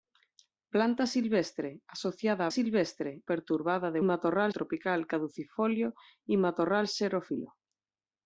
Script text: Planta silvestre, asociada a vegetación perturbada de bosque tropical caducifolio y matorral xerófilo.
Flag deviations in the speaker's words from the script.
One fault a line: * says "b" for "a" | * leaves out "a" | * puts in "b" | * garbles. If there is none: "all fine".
* says "silvestre" for "vegetación"
* says "matorral" for "bosque"